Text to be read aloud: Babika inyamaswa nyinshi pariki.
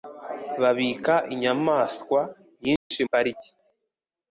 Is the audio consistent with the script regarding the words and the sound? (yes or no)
no